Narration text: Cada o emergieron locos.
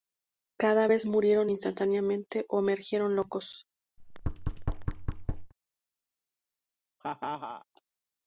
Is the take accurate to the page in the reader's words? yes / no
no